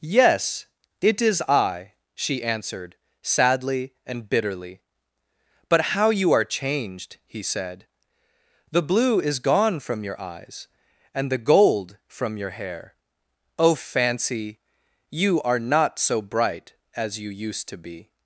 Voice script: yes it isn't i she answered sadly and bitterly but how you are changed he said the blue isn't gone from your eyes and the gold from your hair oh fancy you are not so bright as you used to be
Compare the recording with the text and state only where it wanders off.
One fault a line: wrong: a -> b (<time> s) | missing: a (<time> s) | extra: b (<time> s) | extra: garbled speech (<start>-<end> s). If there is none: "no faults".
wrong: isn't -> is (1.2 s)
wrong: isn't -> is (9.2 s)